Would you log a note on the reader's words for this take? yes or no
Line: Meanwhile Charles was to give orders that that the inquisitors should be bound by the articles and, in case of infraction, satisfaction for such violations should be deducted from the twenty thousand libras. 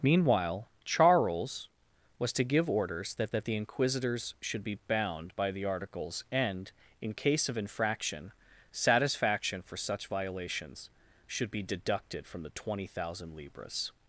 no